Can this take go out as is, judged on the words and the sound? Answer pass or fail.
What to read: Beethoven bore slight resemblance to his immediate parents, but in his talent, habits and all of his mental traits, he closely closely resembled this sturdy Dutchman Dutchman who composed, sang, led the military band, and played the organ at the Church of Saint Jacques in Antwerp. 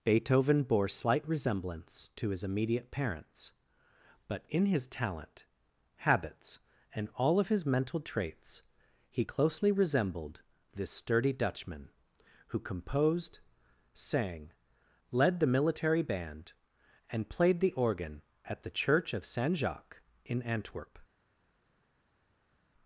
fail